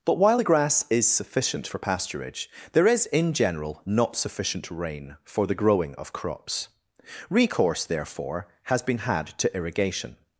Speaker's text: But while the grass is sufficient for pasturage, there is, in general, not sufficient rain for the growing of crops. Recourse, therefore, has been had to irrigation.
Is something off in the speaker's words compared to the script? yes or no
no